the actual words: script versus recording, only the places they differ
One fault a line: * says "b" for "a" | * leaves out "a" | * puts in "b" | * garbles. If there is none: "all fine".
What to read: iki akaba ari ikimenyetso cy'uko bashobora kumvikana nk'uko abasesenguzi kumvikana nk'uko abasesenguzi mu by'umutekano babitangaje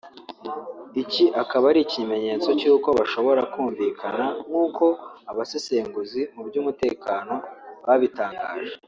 * leaves out "kumvikana nk'uko abasesenguzi"